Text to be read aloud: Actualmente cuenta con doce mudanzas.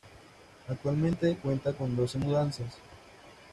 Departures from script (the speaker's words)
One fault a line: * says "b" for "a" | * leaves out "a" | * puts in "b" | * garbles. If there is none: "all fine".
all fine